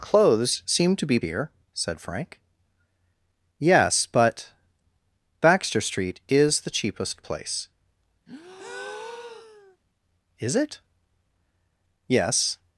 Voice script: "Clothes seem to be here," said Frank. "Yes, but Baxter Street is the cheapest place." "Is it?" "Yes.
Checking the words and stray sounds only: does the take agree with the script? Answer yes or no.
no